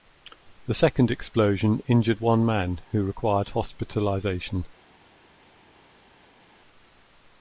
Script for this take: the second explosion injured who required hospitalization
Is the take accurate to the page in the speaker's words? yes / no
no